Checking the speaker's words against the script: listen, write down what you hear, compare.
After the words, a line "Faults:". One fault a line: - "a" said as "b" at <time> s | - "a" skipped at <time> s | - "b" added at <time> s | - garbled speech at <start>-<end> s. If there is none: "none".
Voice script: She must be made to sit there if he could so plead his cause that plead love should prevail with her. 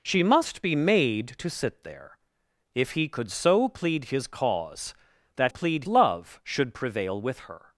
She must be made to sit there if he could so plead his cause that plead love should prevail with her.
Faults:
none